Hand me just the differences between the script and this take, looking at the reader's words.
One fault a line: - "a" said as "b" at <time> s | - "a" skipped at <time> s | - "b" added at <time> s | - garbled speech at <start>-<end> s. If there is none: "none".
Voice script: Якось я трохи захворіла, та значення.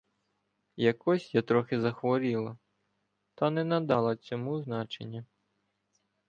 - "не надала цьому" added at 3.5 s